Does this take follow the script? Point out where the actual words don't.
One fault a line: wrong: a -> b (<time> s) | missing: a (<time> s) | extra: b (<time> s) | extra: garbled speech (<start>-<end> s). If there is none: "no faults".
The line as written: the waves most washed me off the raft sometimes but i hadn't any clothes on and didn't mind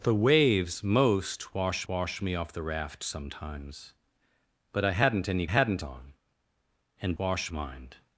extra: washed (1.9 s)
wrong: clothes -> hadn't (5.4 s)
wrong: didn't -> washed (7.2 s)